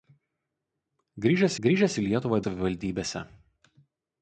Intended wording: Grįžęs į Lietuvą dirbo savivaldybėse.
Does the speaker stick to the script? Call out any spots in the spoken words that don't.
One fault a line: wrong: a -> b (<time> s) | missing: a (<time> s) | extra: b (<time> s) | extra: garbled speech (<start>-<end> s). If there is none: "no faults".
extra: grįžęs (1.7 s)
missing: dirbo (2.4 s)